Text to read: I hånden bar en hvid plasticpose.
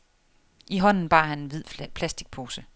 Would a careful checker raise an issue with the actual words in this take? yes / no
yes